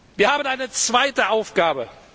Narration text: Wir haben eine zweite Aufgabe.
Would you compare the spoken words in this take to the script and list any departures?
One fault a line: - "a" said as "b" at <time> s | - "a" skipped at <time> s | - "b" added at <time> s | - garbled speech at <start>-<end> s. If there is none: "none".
none